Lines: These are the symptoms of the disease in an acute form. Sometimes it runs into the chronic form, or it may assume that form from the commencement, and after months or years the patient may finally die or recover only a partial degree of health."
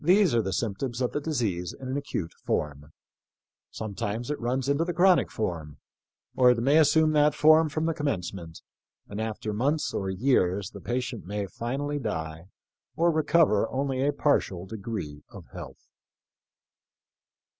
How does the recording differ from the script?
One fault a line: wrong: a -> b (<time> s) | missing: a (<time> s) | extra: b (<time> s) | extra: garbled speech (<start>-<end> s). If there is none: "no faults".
no faults